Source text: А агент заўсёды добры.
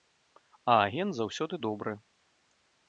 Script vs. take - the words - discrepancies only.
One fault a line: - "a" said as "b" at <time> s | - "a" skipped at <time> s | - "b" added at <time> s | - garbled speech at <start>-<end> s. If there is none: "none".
none